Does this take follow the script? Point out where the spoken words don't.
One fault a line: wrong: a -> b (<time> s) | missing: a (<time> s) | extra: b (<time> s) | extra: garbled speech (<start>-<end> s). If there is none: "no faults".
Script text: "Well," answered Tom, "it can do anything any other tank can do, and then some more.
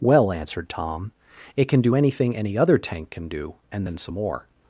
no faults